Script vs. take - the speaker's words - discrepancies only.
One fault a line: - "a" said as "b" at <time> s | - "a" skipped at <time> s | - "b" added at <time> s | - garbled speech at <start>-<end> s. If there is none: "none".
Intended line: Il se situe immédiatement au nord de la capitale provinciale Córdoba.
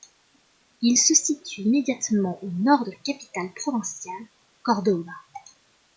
none